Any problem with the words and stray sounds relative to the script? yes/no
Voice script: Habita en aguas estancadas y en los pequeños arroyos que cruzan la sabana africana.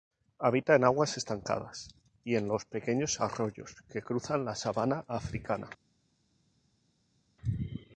no